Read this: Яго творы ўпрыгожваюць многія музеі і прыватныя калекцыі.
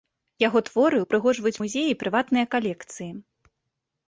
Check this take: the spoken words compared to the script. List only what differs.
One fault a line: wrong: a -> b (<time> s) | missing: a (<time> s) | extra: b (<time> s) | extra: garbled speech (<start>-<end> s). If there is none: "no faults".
missing: многія (1.6 s)